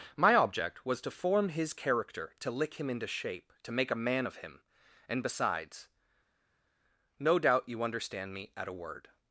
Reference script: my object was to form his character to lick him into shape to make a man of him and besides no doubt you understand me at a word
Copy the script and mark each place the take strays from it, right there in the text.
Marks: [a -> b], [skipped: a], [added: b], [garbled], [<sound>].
my object was to form his character to lick him into shape to make a man of him and besides no doubt you understand me at a word